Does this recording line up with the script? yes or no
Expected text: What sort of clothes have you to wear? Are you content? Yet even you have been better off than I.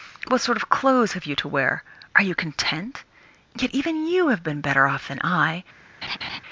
yes